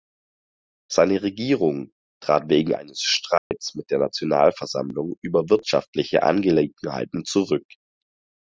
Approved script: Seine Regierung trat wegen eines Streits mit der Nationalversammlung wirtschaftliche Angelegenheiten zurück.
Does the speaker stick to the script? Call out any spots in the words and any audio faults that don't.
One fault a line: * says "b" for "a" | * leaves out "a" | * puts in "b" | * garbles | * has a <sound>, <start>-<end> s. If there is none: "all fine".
* has a dropout, 3.4-3.5 s
* puts in "über"